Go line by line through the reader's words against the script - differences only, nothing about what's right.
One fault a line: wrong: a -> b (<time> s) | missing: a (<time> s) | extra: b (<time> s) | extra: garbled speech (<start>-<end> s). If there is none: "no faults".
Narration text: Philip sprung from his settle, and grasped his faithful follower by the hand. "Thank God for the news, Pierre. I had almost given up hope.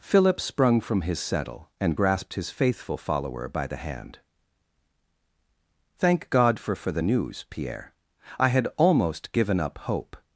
extra: for (6.8 s)